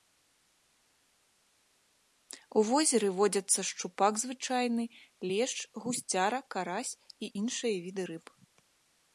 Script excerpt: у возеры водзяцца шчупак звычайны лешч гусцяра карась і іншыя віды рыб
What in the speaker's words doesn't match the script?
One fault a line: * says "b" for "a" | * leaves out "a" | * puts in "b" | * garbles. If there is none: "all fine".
all fine